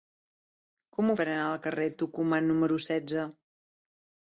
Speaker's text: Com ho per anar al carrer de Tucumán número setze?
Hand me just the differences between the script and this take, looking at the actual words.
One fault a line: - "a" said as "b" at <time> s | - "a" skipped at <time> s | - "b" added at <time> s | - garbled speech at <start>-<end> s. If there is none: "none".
none